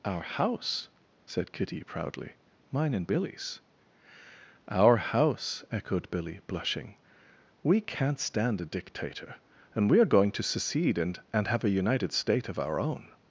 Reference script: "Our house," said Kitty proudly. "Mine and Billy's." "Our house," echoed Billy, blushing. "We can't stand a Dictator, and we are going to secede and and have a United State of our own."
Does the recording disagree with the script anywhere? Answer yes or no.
no